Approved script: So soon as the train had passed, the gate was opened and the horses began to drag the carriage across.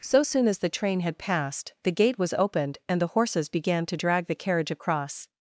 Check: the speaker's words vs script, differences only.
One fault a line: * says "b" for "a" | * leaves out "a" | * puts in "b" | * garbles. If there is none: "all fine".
all fine